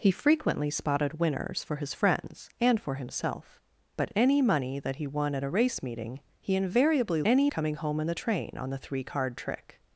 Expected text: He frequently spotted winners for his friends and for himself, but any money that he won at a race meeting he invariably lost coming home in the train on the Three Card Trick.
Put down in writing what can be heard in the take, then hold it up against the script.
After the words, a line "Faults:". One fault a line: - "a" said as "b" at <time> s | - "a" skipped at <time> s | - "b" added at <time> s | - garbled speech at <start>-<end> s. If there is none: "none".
He frequently spotted winners for his friends and for himself, but any money that he won at a race meeting he invariably any coming home in the train on the Three Card Trick.
Faults:
- "lost" said as "any" at 7.2 s